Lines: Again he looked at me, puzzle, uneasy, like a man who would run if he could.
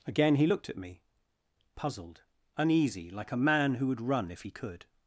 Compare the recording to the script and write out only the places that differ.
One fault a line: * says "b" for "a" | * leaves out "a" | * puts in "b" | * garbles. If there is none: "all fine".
* says "puzzled" for "puzzle"